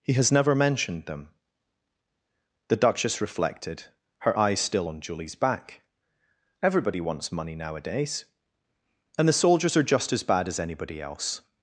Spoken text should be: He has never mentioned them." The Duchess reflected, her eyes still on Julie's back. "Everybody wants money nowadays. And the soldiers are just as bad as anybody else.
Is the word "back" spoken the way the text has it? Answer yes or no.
yes